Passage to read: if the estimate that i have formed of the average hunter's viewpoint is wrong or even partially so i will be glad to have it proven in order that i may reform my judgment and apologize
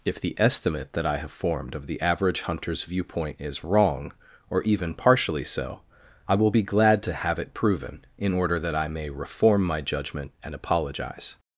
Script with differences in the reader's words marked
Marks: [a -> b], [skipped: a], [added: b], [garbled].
if the estimate that i have formed of the average hunter's viewpoint is wrong or even partially so i will be glad to have it proven in order that i may reform my judgment and apologize